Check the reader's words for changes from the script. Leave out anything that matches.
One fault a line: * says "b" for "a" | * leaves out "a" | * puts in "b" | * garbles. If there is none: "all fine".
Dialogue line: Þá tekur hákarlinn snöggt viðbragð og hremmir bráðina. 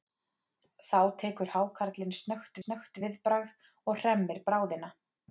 * puts in "snöggt"